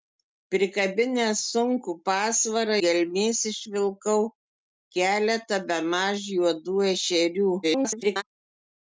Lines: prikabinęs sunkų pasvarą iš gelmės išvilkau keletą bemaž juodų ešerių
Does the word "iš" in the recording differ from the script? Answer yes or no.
yes